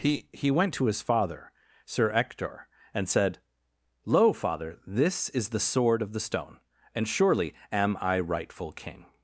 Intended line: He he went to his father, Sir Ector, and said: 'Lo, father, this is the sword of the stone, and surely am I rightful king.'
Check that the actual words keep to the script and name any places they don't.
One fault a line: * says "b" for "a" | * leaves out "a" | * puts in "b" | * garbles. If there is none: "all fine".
all fine